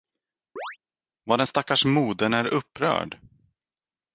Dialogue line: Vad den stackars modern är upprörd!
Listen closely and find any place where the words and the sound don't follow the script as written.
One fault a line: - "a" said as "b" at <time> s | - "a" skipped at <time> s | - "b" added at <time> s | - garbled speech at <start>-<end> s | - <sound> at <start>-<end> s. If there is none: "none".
- chirp at 0.6-0.8 s